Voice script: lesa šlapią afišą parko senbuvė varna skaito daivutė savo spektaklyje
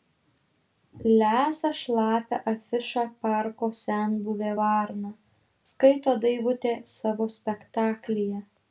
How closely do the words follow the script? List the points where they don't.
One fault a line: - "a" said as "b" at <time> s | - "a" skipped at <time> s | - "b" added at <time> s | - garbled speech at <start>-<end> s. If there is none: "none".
none